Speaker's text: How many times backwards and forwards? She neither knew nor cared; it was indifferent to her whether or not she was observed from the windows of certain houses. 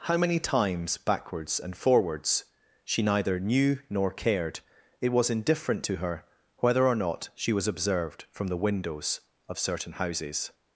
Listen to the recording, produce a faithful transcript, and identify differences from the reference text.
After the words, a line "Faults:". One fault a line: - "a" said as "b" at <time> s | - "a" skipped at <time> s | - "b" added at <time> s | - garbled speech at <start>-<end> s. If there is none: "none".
How many times backwards and forwards? She neither knew nor cared; it was indifferent to her whether or not she was observed from the windows of certain houses.
Faults:
none